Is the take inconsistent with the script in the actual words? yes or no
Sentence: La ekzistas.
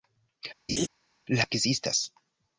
no